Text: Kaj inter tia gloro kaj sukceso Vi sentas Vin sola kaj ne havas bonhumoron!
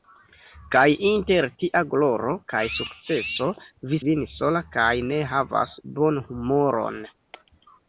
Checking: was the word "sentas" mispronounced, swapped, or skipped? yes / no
yes